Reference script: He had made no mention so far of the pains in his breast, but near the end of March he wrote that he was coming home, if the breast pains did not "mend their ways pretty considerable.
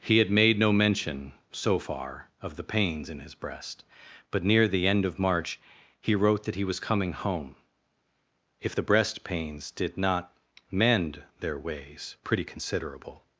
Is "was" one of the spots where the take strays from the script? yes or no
no